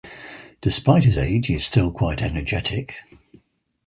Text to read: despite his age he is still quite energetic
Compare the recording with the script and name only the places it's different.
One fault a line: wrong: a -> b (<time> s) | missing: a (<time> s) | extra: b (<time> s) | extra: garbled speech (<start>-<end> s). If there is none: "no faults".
no faults